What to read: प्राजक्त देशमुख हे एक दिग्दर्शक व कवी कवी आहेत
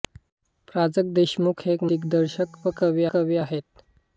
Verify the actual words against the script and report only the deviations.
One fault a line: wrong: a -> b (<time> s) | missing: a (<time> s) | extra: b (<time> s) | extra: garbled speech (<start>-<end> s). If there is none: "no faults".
no faults